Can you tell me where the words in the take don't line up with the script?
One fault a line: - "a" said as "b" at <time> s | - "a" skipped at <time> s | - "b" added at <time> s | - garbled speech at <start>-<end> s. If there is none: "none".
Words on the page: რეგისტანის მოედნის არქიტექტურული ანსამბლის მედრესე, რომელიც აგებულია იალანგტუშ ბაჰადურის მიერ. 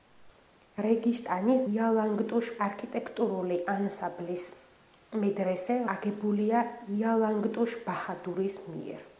- "მოედნის" said as "იალანგტუშ" at 1.7 s
- "რომელიც" skipped at 5.8 s